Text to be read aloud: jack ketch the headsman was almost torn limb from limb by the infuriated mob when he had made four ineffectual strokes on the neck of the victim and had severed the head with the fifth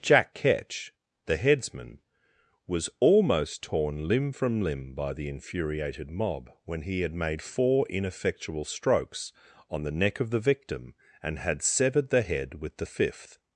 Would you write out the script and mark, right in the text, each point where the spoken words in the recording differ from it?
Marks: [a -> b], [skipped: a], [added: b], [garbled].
jack ketch the headsman was almost torn limb from limb by the infuriated mob when he had made four ineffectual strokes on the neck of the victim and had severed the head with the fifth